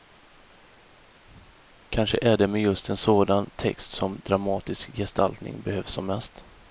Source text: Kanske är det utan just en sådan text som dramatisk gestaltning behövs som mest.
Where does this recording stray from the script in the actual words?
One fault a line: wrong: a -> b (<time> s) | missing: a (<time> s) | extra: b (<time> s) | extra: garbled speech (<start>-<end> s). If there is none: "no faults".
wrong: utan -> med (2.5 s)